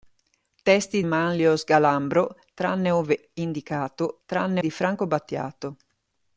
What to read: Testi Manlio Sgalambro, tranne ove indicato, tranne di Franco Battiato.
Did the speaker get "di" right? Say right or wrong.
right